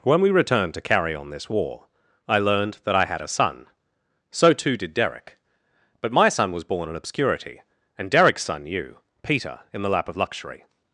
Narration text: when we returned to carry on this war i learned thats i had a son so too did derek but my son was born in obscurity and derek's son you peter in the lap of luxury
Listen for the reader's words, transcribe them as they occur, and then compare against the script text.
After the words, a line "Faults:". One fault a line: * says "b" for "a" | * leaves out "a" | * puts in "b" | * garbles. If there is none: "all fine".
when we returned to carry on this war i learned that i had a son so too did derek but my son was born in obscurity and derek's son you peter in the lap of luxury
Faults:
* says "that" for "thats"